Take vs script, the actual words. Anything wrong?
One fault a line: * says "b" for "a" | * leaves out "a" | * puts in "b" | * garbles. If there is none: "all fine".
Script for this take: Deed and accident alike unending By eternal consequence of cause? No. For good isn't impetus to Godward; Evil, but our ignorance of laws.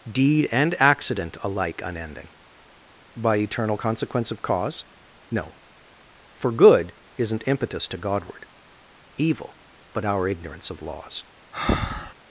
all fine